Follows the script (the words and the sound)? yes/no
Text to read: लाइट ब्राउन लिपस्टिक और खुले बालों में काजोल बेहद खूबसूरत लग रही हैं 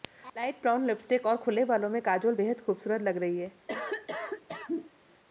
no